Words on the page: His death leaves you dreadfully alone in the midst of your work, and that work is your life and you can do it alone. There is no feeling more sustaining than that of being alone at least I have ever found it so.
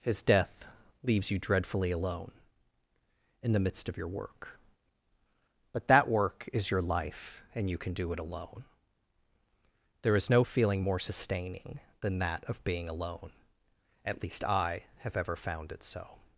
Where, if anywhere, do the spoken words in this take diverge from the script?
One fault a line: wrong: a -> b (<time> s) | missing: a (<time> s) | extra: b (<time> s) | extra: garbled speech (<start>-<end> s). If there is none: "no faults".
wrong: and -> but (5.7 s)